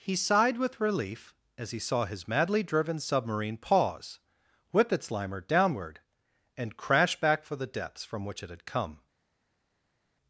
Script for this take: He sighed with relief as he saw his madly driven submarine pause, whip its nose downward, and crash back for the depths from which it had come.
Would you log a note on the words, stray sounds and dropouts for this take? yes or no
yes